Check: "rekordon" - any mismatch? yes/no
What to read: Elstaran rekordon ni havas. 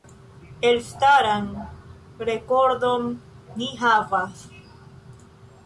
no